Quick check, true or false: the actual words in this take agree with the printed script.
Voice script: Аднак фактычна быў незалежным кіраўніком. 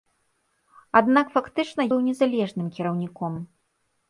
true